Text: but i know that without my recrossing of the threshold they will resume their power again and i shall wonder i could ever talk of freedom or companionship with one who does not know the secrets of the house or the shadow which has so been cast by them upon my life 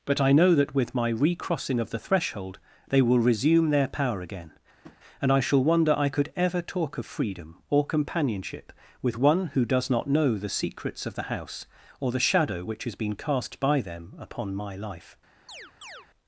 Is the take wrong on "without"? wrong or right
wrong